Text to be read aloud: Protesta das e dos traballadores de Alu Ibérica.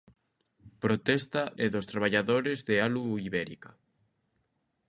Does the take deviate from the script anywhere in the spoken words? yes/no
yes